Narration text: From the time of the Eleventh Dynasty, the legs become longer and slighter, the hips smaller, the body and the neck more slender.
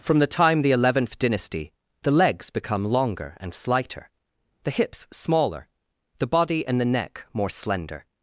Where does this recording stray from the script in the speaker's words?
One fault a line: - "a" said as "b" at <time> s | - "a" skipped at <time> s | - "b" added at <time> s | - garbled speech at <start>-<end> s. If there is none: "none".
- "of" skipped at 0.6 s